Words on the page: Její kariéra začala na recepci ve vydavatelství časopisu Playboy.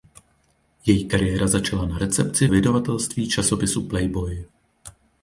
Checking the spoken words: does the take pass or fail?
fail